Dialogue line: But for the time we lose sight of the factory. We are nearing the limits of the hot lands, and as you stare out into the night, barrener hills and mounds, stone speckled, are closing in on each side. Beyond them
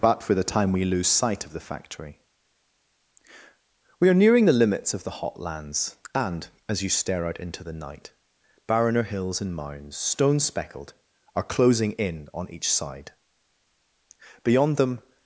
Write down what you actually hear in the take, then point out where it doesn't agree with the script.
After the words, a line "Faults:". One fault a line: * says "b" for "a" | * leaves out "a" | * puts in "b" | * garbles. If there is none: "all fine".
But for the time we lose sight of the factory. We are nearing the limits of the hot lands, and as you stare out into the night, barrener hills and mounds, stone speckled, are closing in on each side. Beyond them
Faults:
all fine